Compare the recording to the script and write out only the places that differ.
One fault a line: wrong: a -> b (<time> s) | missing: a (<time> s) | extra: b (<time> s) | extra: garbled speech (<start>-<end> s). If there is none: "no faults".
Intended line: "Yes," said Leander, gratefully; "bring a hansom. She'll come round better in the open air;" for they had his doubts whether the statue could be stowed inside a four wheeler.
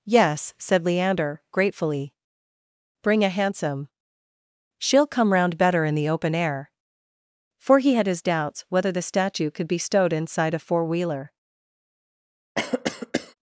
wrong: they -> he (7.8 s)